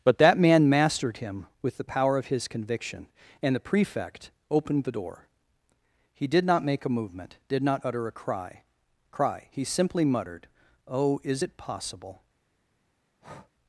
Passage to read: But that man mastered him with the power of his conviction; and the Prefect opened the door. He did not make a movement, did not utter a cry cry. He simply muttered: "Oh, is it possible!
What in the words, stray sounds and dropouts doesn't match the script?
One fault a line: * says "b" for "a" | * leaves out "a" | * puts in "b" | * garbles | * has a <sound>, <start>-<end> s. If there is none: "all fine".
* has a breath, 13.2-13.5 s